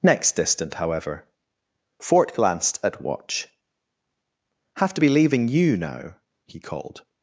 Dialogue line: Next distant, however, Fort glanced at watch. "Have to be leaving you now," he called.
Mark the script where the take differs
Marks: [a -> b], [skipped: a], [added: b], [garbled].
Next distant, however, Fort glanced at watch. "Have to be leaving you now," he called.